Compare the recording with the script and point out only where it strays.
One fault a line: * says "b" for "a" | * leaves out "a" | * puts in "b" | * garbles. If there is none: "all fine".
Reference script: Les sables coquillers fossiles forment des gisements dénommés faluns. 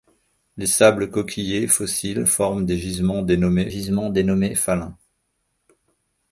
* puts in "gisements dénommés"